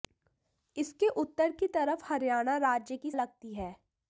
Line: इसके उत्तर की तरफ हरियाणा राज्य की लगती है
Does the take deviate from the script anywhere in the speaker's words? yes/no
no